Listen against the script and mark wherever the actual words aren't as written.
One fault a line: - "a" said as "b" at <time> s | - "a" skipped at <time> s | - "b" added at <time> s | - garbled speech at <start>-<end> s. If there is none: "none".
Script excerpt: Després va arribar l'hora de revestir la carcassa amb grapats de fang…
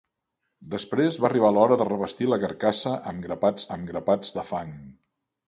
- "amb grapats" added at 3.8 s